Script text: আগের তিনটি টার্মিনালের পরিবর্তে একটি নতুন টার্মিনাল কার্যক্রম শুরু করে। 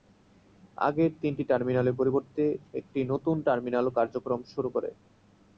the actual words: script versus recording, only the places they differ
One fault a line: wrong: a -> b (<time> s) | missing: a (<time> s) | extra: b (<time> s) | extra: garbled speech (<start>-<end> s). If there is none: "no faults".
no faults